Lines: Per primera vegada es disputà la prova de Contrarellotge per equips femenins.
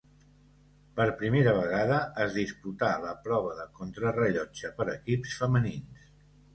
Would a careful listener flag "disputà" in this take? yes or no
no